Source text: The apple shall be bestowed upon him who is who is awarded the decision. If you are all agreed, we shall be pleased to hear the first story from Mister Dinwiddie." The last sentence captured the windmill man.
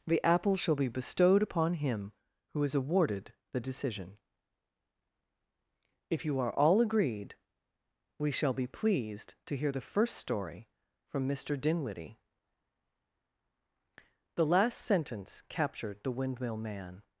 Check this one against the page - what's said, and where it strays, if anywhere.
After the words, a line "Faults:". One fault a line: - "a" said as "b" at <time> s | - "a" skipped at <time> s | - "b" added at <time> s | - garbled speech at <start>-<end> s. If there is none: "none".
The apple shall be bestowed upon him who is awarded the decision. If you are all agreed, we shall be pleased to hear the first story from Mister Dinwiddie." The last sentence captured the windmill man.
Faults:
- "who is" skipped at 2.7 s